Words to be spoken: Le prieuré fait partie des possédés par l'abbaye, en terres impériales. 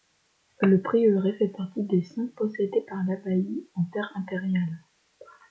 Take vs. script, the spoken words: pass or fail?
fail